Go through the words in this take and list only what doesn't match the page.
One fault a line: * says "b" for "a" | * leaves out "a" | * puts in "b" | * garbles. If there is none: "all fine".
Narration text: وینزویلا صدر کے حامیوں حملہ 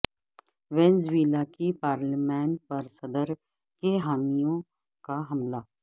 * puts in "کی پارلیمان پر"
* puts in "کا"